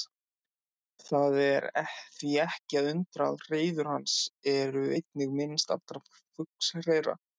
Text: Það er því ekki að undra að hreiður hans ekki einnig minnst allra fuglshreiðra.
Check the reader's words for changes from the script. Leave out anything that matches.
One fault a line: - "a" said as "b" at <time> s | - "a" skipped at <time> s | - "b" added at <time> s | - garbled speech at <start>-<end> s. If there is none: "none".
- "ekki" said as "eru" at 4.5 s